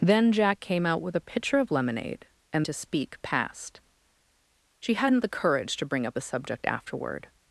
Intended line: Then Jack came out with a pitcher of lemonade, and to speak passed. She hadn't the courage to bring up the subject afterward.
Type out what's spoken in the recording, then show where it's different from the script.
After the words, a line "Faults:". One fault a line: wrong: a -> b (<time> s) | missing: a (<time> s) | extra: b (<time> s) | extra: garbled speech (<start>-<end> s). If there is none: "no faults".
Then Jack came out with a pitcher of lemonade, and to speak passed. She hadn't the courage to bring up the subject afterward.
Faults:
no faults